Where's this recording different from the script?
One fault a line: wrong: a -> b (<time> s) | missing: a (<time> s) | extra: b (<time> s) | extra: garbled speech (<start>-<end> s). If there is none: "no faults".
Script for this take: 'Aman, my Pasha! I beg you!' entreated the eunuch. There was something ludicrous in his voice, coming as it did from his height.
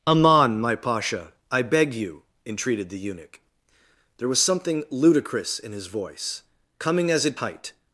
missing: did from his (7.4 s)